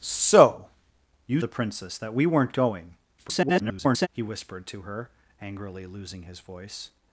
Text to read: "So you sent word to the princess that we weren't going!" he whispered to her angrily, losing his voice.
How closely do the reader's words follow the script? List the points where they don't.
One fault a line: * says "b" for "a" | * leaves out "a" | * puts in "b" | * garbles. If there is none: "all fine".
* leaves out "sent word to"
* garbles